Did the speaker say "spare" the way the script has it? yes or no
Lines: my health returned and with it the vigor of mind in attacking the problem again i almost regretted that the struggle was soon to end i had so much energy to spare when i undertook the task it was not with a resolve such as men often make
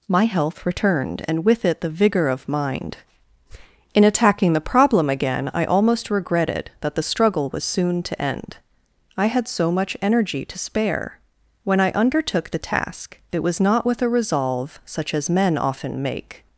yes